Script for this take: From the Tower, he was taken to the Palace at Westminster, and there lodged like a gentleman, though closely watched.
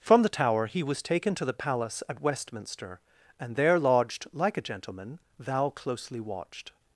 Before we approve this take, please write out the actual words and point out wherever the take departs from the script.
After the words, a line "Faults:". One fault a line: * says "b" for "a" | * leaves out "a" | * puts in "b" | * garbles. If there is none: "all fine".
From the Tower, he was taken to the Palace at Westminster, and there lodged like a gentleman, thou closely watched.
Faults:
* says "thou" for "though"